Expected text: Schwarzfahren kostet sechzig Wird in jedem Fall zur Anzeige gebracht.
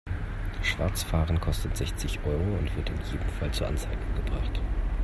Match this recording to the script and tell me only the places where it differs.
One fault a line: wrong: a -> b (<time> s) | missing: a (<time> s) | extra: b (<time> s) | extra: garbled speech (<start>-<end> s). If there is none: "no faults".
extra: Euro und (2.2 s)